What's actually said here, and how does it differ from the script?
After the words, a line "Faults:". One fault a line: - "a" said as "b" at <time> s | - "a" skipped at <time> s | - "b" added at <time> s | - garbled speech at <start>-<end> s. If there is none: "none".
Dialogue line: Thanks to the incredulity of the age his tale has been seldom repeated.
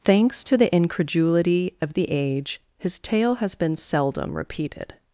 Thanks to the incredulity of the age his tale has been seldom repeated.
Faults:
none